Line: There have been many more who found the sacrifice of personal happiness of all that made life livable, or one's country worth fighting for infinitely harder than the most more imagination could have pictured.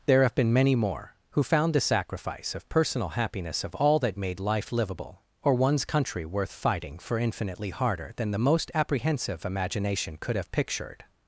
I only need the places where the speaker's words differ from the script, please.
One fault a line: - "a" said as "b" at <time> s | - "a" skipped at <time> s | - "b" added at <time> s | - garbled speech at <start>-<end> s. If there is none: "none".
- "more" said as "apprehensive" at 8.7 s